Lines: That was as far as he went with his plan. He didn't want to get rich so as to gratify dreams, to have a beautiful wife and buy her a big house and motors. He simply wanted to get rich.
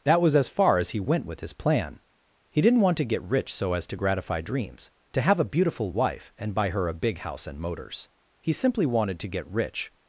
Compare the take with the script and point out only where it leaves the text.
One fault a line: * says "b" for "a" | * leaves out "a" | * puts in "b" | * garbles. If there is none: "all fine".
all fine